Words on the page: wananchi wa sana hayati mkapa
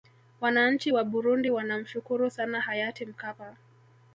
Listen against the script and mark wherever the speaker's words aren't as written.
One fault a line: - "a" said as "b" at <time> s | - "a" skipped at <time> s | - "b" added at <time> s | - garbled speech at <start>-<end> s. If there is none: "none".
- "burundi wanamshukuru" added at 1.0 s